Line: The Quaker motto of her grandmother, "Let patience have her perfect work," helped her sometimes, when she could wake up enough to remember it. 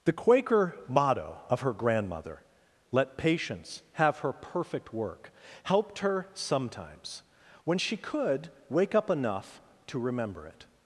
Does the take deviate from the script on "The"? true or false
false